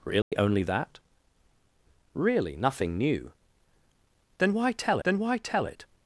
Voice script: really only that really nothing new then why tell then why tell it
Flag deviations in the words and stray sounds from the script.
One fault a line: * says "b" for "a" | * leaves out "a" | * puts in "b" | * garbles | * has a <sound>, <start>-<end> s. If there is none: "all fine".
* has a dropout, 0.2-0.3 s